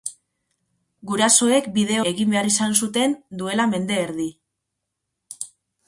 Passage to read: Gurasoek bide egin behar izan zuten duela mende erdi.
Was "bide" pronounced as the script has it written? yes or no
yes